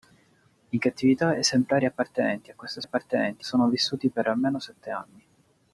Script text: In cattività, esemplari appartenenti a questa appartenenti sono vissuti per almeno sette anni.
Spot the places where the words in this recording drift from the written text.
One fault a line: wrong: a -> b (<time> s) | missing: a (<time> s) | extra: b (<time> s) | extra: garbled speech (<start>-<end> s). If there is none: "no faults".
no faults